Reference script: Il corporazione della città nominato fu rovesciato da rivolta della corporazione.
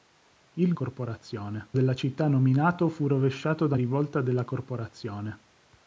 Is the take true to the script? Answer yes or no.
yes